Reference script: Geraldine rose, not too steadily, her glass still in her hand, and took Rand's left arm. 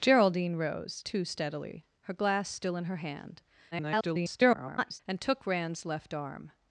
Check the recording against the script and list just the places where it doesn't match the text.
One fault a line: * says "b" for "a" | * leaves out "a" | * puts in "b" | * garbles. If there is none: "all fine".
* leaves out "not"
* garbles